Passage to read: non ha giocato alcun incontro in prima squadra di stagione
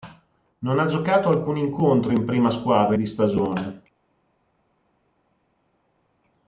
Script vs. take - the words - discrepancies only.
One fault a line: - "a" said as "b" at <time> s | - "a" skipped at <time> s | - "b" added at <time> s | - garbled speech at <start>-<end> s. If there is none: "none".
none